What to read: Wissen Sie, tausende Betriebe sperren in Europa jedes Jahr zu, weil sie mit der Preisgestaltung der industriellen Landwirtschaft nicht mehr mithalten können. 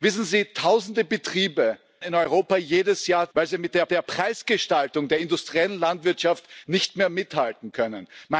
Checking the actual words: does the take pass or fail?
fail